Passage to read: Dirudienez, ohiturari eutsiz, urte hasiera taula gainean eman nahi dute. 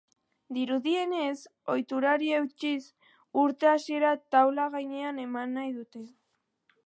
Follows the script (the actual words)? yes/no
yes